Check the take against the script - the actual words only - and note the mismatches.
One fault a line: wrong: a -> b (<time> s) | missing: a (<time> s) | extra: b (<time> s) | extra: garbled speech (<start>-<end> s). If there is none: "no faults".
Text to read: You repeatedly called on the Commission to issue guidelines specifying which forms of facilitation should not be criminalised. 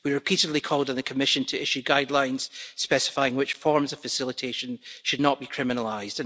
wrong: You -> We (0.0 s)